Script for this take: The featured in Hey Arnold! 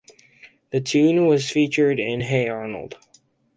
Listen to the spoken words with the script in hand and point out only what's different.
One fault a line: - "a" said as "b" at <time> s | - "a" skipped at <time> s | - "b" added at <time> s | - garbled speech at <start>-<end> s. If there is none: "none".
- "tune was" added at 0.8 s